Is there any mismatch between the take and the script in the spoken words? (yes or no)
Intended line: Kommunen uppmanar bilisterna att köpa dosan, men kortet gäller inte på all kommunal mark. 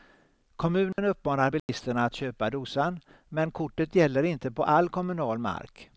no